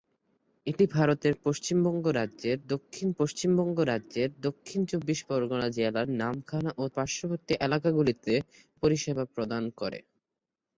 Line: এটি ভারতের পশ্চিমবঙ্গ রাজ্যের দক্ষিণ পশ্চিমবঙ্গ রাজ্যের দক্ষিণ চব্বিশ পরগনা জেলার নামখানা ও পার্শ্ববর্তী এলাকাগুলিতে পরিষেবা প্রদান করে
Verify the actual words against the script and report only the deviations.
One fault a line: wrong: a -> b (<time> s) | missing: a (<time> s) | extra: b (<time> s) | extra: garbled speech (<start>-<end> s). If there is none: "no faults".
no faults